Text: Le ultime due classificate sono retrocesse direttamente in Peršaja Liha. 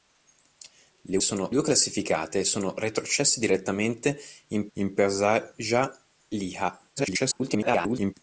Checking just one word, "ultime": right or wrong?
wrong